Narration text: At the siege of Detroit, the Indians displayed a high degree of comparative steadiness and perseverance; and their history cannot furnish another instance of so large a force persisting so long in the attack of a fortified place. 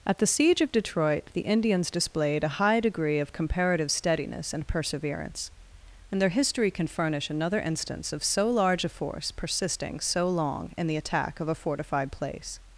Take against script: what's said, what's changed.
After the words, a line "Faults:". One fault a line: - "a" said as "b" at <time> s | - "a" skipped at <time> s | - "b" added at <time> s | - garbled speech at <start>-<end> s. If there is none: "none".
At the siege of Detroit, the Indians displayed a high degree of comparative steadiness and perseverance; and their history can furnish another instance of so large a force persisting so long in the attack of a fortified place.
Faults:
- "cannot" said as "can" at 6.7 s